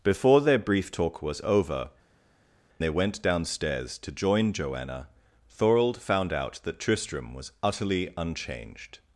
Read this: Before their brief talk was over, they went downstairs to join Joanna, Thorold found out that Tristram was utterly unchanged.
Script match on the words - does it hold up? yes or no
yes